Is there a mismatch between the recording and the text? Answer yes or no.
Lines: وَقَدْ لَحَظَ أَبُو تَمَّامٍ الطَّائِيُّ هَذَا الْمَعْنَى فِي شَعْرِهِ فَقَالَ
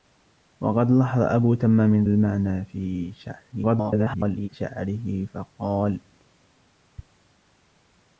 yes